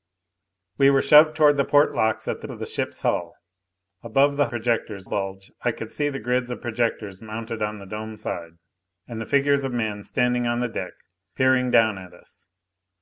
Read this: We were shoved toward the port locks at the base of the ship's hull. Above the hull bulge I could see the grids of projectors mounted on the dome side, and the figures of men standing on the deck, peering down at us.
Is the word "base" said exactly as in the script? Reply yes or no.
no